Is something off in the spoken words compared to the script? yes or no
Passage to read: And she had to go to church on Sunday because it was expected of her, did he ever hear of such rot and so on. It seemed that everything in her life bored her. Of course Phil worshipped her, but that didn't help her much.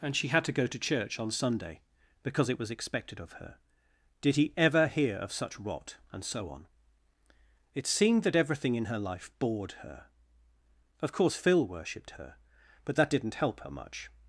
no